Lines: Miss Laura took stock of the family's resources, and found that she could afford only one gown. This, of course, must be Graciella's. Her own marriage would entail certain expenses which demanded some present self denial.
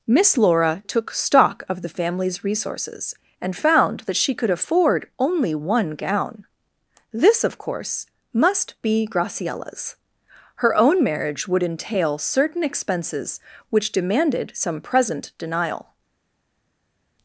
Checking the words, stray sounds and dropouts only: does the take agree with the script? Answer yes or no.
no